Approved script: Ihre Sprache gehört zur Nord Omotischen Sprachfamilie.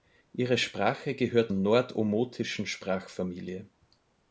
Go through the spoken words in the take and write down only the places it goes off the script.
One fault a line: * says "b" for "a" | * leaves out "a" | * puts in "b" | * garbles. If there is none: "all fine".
* leaves out "zur"